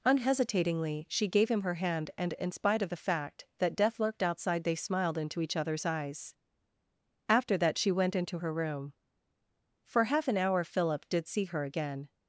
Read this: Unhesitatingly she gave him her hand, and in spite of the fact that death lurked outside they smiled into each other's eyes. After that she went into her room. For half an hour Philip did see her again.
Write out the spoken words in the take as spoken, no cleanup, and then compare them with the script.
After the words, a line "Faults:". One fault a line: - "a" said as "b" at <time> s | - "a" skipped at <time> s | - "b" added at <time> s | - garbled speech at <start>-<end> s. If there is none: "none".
Unhesitatingly she gave him her hand, and in spite of the fact that death lurked outside they smiled into each other's eyes. After that she went into her room. For half an hour Philip did see her again.
Faults:
none